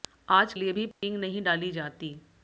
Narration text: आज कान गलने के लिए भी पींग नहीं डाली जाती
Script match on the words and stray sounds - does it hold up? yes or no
no